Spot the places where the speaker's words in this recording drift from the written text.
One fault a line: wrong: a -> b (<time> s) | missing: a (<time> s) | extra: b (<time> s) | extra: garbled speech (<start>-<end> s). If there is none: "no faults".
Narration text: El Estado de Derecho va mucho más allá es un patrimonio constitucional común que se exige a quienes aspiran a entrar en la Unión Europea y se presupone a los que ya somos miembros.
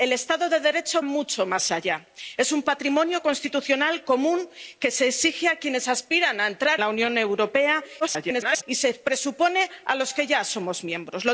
missing: va (1.0 s)
missing: en (6.8 s)
extra: garbled speech (8.0-8.6 s)